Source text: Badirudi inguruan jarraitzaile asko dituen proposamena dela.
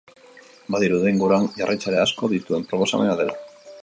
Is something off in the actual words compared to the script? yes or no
no